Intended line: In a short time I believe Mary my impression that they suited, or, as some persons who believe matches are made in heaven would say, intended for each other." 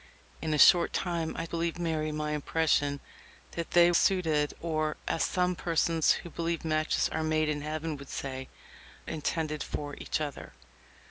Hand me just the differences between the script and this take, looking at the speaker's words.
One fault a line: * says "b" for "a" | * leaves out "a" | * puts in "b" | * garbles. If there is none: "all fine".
all fine